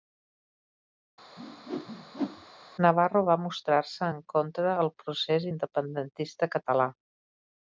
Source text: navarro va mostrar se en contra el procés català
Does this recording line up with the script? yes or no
no